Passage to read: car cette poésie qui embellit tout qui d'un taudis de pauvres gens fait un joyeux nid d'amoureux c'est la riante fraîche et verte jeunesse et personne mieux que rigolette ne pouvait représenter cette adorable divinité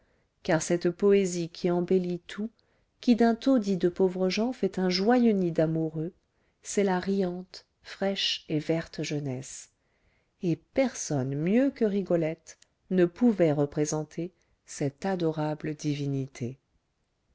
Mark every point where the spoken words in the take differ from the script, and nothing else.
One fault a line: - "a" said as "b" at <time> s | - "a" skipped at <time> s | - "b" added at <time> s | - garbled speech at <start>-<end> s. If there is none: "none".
none